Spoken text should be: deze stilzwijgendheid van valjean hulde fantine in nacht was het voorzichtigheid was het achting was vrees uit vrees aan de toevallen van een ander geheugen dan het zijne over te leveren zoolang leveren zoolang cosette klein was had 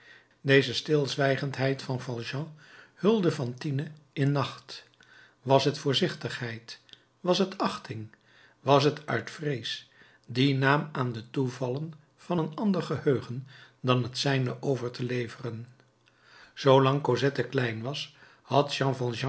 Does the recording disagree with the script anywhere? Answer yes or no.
yes